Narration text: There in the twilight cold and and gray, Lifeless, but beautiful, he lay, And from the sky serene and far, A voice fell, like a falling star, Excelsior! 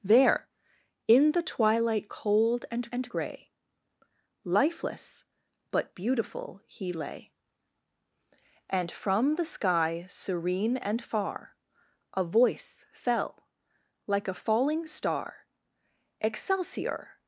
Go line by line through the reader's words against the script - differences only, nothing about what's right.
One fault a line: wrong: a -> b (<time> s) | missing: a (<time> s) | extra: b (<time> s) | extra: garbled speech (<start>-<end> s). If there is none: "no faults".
no faults